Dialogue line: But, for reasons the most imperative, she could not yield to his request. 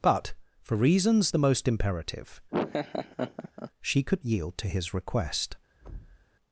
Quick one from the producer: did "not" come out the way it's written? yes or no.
no